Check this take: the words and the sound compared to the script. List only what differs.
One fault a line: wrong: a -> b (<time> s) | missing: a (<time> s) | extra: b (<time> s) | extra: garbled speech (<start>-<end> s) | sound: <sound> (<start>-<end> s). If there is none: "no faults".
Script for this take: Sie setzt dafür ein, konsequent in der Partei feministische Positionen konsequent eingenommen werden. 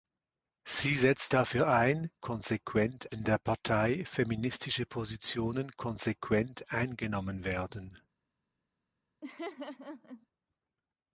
sound: laugh (9.2-10.3 s)